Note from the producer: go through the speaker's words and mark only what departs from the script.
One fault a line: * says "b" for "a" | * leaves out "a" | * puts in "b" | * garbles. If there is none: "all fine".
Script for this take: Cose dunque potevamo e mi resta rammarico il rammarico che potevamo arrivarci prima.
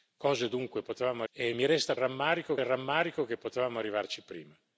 all fine